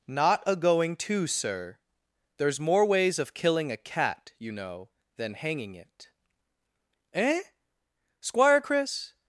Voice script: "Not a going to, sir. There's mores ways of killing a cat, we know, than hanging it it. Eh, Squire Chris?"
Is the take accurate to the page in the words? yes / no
no